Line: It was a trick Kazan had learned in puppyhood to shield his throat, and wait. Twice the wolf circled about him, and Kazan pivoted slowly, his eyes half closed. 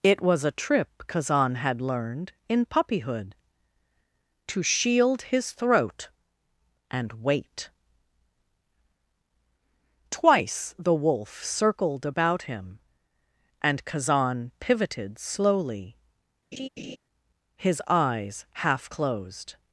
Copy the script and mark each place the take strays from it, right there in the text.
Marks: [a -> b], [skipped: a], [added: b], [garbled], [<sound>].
It was a [trick -> trip] Kazan had learned in puppyhood to shield his throat, and wait. Twice the wolf circled about him, and Kazan pivoted slowly, [laugh] his eyes half closed.